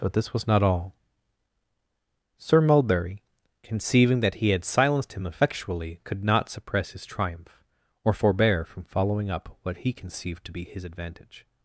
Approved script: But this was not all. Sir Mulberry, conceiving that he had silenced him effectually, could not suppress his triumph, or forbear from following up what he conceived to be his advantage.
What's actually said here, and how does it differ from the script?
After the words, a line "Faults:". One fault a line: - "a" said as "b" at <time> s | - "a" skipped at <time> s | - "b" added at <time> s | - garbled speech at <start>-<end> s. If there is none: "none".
But this was not all. Sir Mulberry, conceiving that he had silenced him effectually, could not suppress his triumph, or forbear from following up what he conceived to be his advantage.
Faults:
none